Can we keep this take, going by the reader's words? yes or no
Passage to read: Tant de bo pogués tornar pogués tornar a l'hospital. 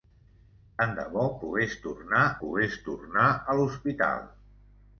yes